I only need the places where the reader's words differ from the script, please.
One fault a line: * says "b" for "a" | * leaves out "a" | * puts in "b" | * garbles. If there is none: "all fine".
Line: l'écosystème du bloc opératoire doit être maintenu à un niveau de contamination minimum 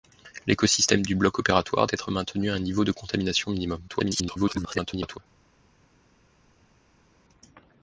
* leaves out "doit"
* garbles